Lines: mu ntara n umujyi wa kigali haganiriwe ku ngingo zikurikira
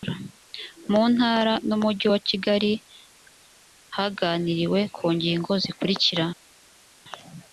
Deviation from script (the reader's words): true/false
false